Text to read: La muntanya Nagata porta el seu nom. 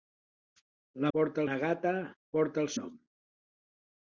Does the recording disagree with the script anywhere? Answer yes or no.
yes